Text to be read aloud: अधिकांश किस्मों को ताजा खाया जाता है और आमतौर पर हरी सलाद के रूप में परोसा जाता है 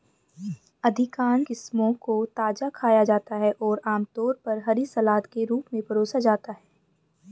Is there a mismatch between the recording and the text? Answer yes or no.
no